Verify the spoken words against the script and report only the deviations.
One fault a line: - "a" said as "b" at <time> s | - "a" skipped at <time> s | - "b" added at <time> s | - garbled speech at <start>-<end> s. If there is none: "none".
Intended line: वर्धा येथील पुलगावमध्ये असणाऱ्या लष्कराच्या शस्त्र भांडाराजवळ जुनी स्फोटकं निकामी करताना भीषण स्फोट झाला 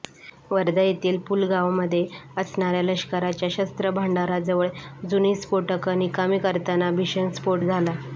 none